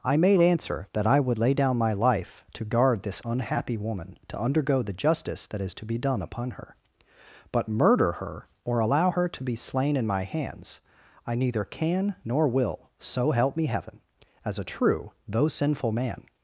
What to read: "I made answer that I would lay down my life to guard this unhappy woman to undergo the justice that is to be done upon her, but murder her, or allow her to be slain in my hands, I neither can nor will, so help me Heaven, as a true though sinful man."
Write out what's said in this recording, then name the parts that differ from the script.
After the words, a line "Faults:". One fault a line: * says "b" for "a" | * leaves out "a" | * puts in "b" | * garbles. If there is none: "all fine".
"I made answer that I would lay down my life to guard this unhappy woman to undergo the justice that is to be done upon her, but murder her, or allow her to be slain in my hands, I neither can nor will, so help me Heaven, as a true though sinful man."
Faults:
all fine